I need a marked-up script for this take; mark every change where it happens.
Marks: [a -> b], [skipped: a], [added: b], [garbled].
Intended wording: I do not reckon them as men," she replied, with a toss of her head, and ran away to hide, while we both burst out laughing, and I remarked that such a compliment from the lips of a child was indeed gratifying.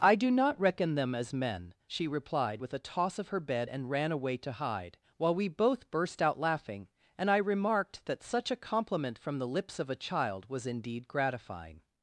I do not reckon them as men," she replied, with a toss of her [head, -> bed] and ran away to hide, while we both burst out laughing, and I remarked that such a compliment from the lips of a child was indeed gratifying.